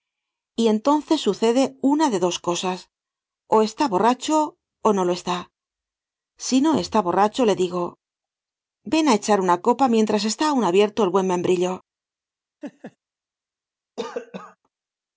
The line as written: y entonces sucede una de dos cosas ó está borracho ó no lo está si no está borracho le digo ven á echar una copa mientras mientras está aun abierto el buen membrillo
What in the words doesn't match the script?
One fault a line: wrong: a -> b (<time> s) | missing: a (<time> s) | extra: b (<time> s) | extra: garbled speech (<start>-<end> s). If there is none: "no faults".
missing: mientras (10.2 s)